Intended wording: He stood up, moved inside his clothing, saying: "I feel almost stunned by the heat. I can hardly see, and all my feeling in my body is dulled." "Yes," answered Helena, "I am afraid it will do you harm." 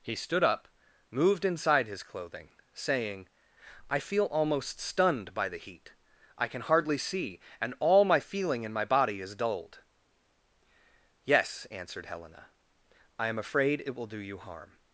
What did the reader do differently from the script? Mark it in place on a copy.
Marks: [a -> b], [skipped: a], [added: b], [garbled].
He stood up, moved inside his clothing, saying: "I feel almost stunned by the heat. I can hardly see, and all my feeling in my body is dulled." "Yes," answered Helena, "I am afraid it will do you harm."